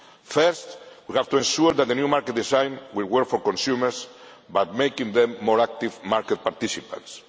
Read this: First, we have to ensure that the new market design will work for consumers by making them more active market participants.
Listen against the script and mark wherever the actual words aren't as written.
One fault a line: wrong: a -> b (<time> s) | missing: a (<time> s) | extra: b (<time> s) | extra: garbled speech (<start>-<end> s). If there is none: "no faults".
no faults